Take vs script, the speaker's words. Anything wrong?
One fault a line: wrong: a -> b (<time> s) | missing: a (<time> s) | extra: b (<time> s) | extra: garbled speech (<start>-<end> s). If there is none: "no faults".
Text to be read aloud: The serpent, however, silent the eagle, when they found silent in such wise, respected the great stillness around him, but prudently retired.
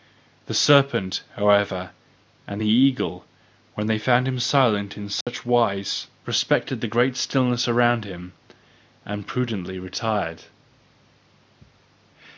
wrong: silent -> and (2.5 s)
extra: him (4.3 s)
wrong: but -> and (9.0 s)